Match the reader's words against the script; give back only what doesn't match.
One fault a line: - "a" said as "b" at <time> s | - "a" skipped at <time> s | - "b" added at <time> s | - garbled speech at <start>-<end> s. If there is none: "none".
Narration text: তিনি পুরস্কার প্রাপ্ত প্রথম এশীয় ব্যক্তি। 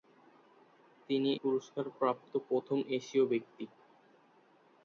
none